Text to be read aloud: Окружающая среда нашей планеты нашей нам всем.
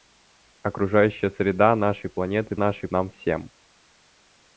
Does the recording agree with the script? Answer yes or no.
yes